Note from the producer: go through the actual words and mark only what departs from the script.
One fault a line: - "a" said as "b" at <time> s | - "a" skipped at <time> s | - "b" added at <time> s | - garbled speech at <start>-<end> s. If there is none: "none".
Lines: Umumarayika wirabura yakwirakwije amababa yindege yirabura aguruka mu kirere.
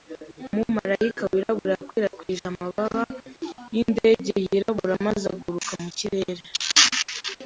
- "maze" added at 5.1 s